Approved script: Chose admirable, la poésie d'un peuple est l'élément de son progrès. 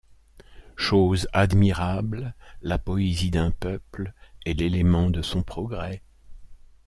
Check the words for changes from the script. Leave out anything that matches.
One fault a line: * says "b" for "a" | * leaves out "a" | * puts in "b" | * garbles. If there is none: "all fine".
all fine